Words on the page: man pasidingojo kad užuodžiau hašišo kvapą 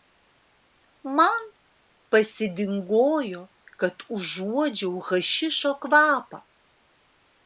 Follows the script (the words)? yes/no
yes